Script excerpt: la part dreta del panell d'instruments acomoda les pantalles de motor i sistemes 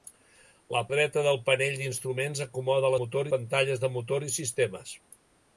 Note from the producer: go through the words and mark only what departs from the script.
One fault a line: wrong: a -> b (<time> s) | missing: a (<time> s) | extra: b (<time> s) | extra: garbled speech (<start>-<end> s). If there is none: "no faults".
missing: part (0.8 s)
wrong: les -> motor (3.0 s)